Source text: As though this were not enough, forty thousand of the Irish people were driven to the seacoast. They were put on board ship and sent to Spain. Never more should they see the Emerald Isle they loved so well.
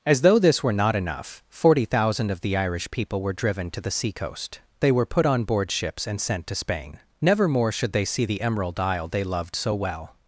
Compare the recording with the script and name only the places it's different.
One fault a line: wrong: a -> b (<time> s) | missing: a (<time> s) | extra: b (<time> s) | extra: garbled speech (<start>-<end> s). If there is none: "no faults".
wrong: ship -> ships (5.7 s)